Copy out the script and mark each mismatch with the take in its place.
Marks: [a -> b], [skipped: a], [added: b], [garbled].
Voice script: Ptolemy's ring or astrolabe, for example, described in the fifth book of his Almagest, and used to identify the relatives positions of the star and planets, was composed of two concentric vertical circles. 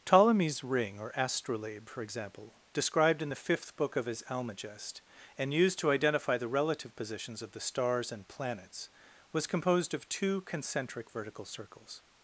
Ptolemy's ring or astrolabe, for example, described in the fifth book of his Almagest, and used to identify the [relatives -> relative] positions of the [star -> stars] and planets, was composed of two concentric vertical circles.